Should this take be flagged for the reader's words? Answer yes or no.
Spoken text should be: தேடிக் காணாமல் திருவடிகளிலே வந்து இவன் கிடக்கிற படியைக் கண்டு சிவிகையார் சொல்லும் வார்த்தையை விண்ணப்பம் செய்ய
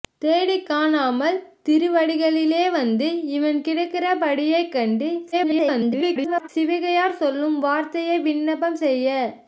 yes